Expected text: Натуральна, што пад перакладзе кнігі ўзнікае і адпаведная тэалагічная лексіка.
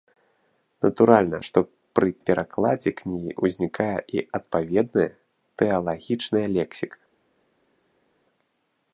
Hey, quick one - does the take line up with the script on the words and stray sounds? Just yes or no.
no